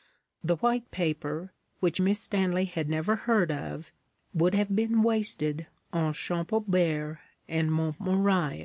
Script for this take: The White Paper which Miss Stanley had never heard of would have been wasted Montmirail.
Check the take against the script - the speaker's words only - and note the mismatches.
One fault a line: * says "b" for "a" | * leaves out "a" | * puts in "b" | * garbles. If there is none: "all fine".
* puts in "on Champaubert and"